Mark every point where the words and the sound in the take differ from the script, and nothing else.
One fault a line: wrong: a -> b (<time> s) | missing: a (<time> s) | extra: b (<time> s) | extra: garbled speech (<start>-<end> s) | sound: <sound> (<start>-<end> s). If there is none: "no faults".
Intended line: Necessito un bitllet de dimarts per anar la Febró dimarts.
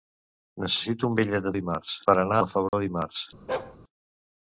sound: dropout (2.7-2.7 s)
sound: bark (3.5-3.8 s)